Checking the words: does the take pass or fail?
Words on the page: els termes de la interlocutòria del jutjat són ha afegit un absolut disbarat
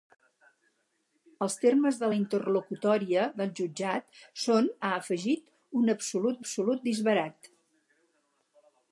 fail